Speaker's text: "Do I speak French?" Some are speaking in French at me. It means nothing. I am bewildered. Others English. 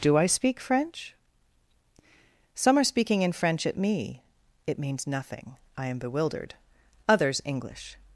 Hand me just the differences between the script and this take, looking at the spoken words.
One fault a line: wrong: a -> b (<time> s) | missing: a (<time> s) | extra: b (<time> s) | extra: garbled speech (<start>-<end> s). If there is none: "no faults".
no faults